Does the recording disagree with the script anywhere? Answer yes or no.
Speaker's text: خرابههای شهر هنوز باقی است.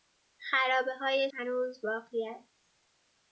yes